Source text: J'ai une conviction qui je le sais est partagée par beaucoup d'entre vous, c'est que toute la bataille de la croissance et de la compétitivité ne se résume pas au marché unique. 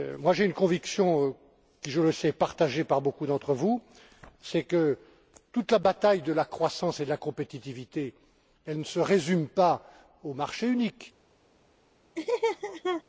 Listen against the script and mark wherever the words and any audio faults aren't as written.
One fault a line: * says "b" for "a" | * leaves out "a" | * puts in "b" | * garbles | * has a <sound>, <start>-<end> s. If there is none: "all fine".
* has a laugh, 12.2-13.0 s